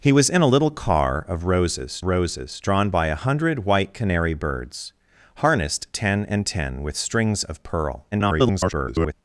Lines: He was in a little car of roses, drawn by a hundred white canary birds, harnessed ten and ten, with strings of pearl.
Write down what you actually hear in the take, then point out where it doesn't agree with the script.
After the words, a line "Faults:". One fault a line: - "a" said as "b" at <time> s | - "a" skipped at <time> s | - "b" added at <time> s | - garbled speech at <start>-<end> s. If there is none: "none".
He was in a little car of roses roses, drawn by a hundred white canary birds, harnessed ten and ten, with strings of pearl. [garbled]
Faults:
- "roses" added at 2.0 s
- garbled speech at 8.1-9.1 s